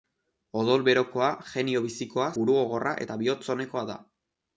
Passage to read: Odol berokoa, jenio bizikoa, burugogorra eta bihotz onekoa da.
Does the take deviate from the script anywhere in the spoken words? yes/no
no